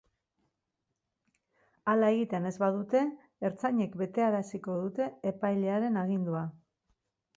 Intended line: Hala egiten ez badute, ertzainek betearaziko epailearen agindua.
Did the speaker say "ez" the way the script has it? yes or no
yes